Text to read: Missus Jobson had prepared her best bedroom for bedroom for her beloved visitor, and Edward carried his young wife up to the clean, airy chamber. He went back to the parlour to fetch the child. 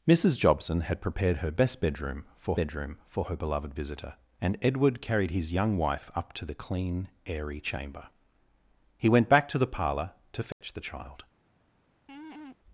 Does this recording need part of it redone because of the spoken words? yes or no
no